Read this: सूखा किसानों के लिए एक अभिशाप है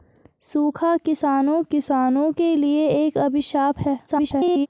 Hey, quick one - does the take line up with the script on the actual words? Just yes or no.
no